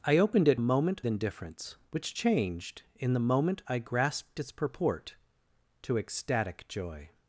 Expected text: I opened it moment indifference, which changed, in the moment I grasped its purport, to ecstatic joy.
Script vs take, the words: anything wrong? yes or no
no